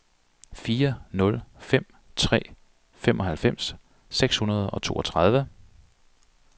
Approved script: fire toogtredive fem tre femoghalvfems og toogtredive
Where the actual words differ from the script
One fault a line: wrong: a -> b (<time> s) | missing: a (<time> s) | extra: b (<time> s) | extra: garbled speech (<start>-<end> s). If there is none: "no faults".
wrong: toogtredive -> nul (1.1 s)
extra: seks hundrede (4.1 s)